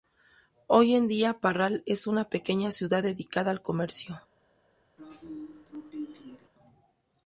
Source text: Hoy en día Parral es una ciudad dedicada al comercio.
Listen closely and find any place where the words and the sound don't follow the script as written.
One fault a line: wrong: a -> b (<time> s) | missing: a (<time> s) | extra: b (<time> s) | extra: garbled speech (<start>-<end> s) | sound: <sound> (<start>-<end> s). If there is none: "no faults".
extra: pequeña (2.3 s)
sound: throat clearing (5.0-6.5 s)